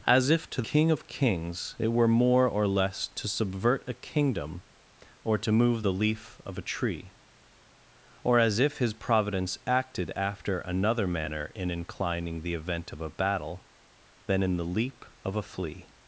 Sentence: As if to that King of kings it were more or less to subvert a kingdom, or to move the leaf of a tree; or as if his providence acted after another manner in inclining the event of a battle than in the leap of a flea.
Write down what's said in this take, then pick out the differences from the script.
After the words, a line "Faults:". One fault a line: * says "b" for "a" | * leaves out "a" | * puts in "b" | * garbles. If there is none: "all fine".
As if to King of kings it were more or less to subvert a kingdom, or to move the leaf of a tree; or as if his providence acted after another manner in inclining the event of a battle than in the leap of a flea.
Faults:
* leaves out "that"